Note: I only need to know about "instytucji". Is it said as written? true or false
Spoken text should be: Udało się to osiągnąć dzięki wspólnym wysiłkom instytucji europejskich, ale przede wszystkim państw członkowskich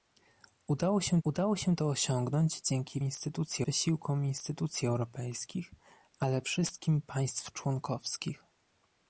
true